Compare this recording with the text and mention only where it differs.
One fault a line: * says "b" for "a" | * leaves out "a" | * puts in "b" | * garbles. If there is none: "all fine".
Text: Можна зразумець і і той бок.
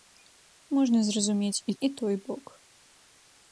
all fine